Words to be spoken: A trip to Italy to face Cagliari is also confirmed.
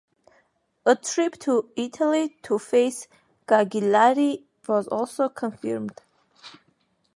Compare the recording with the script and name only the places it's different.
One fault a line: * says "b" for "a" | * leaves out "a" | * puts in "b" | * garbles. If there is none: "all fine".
* says "was" for "is"